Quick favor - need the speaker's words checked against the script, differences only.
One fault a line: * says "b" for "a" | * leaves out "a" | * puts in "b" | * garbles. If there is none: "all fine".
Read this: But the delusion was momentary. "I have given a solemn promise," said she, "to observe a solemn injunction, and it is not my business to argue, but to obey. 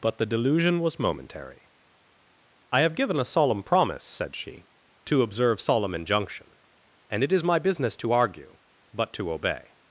* leaves out "a"
* leaves out "not"